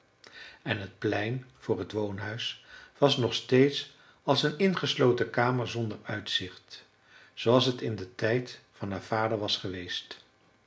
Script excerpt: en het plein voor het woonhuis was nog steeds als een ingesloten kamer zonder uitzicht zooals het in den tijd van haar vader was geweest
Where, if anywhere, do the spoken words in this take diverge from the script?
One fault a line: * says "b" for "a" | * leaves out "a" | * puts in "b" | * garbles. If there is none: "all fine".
all fine